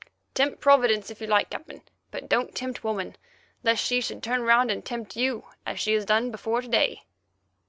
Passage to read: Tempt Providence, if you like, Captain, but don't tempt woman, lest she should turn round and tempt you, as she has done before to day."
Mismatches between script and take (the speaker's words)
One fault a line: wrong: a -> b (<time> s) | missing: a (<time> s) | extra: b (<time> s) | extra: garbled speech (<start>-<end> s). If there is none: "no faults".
no faults